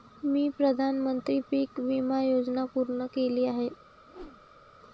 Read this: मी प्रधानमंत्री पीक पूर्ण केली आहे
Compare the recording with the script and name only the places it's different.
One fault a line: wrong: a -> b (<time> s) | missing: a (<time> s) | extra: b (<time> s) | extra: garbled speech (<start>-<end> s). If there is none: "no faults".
extra: विमा योजना (1.8 s)